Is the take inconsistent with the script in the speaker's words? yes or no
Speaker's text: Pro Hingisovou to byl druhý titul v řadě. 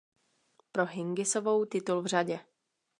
yes